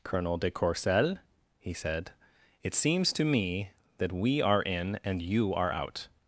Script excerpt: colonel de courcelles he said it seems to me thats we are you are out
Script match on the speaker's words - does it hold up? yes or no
no